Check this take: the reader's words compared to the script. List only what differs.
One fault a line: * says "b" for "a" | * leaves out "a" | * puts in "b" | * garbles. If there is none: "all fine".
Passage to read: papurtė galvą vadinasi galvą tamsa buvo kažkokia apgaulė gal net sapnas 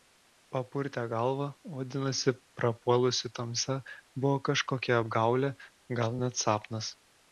* says "prapuolusi" for "galvą"